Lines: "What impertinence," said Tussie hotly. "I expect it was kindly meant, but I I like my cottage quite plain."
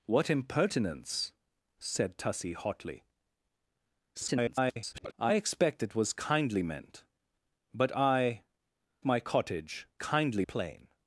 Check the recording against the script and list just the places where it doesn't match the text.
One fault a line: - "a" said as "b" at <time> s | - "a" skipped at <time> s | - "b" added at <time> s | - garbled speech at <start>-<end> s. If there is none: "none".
- garbled speech at 4.1-5.1 s
- "I like" skipped at 8.4 s
- "quite" said as "kindly" at 10.0 s